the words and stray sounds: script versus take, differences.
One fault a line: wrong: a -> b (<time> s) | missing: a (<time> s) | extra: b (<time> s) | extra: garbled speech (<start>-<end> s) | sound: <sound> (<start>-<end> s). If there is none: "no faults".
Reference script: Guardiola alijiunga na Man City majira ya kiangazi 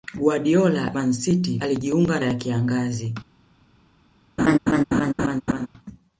missing: alijiunga na (0.9 s)
wrong: majira -> alijiunga (1.6 s)
sound: laugh (4.4-5.7 s)